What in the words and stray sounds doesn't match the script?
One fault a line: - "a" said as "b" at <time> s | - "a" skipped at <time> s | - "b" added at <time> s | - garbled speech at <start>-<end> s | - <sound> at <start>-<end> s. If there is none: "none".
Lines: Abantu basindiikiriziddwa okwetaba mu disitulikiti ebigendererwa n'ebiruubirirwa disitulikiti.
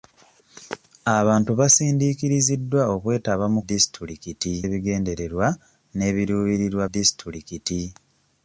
none